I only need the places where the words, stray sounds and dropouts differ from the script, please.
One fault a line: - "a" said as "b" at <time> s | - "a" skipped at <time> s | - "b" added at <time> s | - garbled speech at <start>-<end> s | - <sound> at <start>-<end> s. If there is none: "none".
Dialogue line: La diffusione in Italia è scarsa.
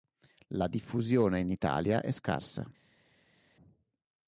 none